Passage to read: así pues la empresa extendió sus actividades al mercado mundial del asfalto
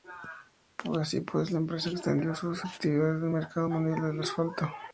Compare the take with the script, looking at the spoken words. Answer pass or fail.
pass